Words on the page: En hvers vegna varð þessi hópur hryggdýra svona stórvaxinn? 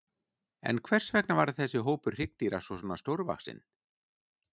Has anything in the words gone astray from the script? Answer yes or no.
no